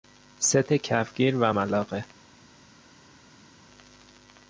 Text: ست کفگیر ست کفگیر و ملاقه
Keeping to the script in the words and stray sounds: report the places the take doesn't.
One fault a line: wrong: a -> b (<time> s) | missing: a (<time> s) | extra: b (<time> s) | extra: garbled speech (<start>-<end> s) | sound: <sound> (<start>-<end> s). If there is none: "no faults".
missing: ست کفگیر (1.4 s)